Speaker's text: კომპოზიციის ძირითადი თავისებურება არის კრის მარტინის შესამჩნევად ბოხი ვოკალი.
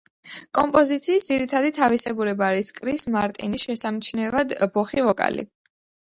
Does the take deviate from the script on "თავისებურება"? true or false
false